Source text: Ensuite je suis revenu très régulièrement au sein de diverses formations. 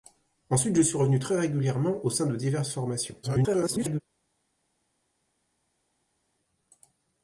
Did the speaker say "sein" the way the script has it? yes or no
yes